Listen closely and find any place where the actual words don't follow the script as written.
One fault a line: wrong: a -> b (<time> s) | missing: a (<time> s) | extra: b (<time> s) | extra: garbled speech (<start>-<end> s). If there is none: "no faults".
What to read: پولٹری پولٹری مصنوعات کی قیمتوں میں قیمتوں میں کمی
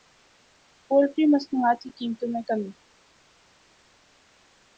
missing: پولٹری (1.2 s)
missing: قیمتوں میں (2.4 s)